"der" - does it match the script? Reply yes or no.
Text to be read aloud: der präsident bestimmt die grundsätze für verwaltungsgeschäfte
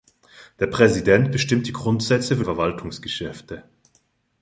yes